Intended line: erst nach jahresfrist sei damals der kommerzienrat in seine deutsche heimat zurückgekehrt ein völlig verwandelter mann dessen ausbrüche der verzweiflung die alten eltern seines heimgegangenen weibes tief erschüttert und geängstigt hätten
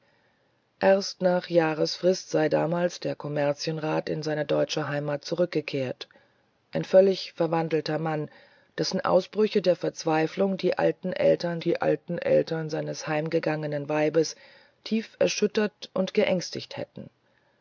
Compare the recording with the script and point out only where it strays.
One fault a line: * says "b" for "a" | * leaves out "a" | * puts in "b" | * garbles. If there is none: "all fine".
* puts in "die alten eltern"